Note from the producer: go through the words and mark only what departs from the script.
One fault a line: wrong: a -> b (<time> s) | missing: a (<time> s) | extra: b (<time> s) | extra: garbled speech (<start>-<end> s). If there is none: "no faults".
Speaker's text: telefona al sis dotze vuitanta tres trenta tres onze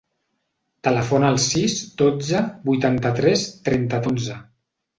missing: tres (4.0 s)